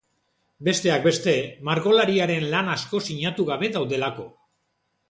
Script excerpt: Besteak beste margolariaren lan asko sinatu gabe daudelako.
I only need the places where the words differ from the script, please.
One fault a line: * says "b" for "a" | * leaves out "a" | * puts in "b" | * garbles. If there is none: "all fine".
all fine